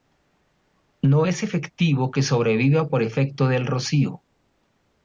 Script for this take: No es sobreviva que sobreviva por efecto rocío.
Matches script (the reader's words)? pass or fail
fail